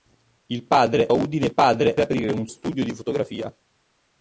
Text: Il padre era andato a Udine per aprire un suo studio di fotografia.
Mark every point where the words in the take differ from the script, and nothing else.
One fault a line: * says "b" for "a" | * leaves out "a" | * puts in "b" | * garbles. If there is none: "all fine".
* leaves out "era andato"
* says "padre" for "per"
* leaves out "suo"